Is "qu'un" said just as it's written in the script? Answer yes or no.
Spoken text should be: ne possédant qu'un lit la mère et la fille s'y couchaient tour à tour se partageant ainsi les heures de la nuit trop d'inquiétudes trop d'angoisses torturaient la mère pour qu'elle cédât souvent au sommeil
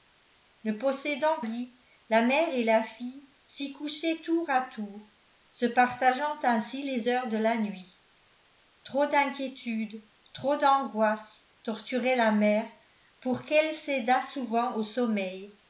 no